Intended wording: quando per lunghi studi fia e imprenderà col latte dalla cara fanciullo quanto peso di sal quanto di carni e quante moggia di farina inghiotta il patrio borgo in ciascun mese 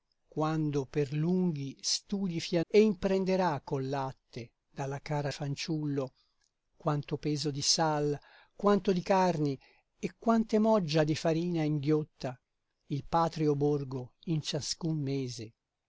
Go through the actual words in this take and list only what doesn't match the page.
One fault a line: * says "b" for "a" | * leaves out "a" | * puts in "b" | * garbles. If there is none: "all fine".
all fine